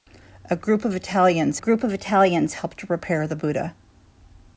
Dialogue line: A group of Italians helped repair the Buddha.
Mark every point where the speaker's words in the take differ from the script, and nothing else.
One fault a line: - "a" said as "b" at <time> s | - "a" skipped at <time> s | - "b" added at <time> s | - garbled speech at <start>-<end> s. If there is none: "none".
- "group of Italians" added at 1.6 s